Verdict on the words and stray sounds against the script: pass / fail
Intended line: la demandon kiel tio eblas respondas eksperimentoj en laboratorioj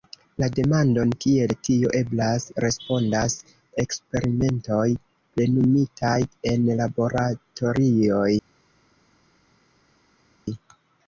fail